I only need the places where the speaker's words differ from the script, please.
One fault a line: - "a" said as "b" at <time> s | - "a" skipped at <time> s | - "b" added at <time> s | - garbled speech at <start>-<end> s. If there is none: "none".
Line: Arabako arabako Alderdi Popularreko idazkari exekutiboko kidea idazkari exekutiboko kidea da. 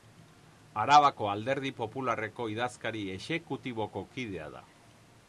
- "arabako" skipped at 1.3 s
- "idazkari exekutiboko kidea" skipped at 4.5 s